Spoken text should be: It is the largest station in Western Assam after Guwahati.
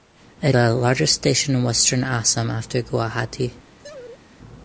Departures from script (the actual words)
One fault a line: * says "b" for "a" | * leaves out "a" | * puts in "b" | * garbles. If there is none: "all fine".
* leaves out "is"